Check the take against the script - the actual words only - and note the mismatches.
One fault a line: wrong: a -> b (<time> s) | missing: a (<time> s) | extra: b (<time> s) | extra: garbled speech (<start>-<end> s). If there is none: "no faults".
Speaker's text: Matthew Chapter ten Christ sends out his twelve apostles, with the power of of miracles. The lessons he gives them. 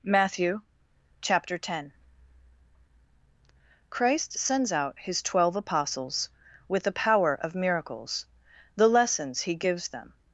missing: of (7.5 s)